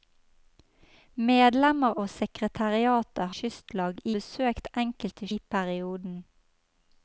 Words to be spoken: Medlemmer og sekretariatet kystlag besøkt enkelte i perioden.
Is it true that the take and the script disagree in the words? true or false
false